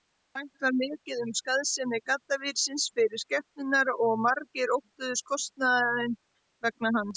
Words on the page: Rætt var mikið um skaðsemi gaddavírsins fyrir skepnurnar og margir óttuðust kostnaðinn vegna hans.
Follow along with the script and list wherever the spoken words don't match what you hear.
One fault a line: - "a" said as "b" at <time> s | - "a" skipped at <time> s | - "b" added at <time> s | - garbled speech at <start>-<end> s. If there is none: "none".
none